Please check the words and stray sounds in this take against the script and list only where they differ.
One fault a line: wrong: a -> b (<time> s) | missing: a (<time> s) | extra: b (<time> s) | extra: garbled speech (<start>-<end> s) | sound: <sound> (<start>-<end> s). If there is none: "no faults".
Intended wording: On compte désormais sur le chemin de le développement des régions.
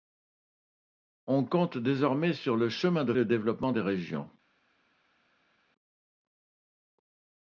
no faults